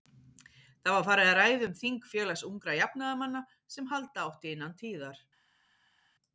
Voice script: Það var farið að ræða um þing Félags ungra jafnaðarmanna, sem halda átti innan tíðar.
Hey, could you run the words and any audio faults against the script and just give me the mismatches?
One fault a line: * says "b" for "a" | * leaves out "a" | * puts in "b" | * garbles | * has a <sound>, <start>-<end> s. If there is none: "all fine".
all fine